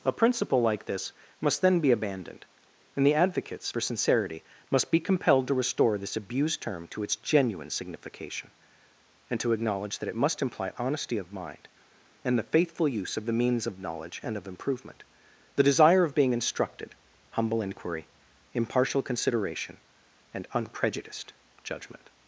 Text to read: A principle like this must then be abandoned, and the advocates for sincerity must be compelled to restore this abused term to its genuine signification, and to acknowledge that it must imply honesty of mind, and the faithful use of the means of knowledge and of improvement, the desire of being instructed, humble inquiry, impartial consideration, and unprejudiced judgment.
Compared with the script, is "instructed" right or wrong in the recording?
right